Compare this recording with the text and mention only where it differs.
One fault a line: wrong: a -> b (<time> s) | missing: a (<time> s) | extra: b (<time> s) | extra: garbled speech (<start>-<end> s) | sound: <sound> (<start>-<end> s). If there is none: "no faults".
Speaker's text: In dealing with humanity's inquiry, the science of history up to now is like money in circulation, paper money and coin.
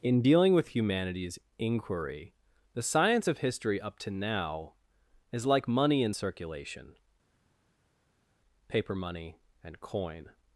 no faults